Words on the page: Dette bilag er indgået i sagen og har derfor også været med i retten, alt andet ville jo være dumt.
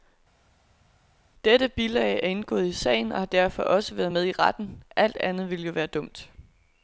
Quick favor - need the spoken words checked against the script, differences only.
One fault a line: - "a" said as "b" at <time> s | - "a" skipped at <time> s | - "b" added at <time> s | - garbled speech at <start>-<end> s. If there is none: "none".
none